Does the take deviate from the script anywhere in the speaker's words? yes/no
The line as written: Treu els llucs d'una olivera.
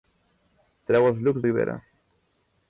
yes